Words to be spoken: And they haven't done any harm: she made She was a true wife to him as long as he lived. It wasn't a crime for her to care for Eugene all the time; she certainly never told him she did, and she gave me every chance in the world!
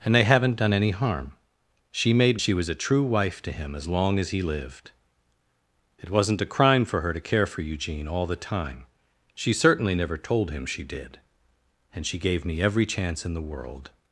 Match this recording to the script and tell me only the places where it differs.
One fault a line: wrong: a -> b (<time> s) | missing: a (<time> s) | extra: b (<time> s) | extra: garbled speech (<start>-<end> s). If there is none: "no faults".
no faults